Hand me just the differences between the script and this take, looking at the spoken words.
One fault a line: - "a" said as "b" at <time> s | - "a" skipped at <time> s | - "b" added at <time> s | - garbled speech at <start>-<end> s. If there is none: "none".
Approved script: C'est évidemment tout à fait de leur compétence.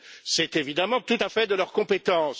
none